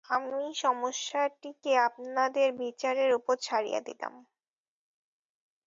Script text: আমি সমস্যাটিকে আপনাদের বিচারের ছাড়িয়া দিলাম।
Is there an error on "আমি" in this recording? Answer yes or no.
no